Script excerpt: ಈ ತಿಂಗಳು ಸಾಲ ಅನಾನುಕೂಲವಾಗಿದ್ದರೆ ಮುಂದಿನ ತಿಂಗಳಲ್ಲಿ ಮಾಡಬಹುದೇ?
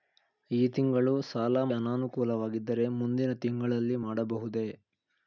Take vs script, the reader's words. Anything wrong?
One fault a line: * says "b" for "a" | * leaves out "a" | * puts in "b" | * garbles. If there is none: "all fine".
all fine